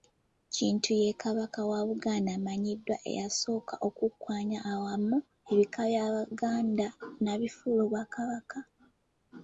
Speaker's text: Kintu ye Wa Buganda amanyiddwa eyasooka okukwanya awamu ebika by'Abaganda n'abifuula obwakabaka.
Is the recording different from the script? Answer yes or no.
yes